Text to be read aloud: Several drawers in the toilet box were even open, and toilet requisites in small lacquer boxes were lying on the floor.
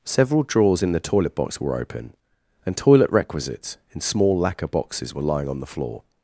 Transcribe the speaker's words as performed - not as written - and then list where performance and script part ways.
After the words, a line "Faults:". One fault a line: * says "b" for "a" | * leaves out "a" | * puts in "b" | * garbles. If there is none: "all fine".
Several drawers in the toilet box were open, and toilet requisites in small lacquer boxes were lying on the floor.
Faults:
* leaves out "even"